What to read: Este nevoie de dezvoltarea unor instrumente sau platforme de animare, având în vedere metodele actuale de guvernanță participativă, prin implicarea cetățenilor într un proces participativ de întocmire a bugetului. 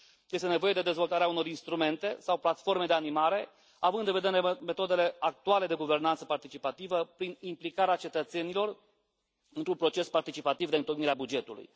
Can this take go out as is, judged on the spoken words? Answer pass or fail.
pass